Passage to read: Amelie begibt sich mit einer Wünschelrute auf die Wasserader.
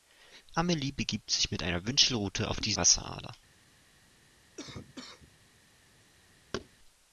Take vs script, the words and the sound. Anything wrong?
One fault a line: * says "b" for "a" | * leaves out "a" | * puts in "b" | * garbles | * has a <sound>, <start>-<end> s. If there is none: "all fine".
* has a cough, 4.6-5.4 s
* has a thud, 6.5-6.7 s